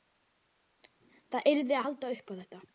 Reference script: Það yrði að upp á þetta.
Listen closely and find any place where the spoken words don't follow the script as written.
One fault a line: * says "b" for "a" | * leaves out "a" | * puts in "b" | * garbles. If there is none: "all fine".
* puts in "halda"